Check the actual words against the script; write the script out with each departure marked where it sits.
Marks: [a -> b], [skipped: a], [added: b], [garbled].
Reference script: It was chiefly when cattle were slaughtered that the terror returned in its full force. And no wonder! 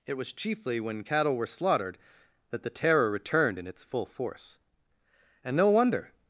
It was chiefly when cattle were slaughtered that the terror returned in its full force. And no wonder!